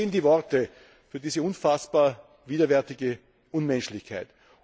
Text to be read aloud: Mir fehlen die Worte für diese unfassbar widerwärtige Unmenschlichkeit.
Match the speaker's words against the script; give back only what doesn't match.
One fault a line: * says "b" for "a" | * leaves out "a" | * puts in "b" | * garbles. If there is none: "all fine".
all fine